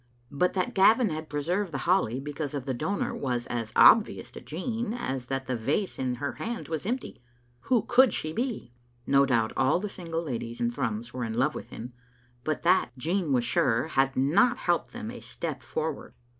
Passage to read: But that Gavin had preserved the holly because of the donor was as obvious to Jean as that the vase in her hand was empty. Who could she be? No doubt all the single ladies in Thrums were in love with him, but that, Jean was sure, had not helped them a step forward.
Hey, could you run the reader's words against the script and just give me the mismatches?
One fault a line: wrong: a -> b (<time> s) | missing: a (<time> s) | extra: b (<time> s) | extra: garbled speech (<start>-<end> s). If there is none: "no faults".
no faults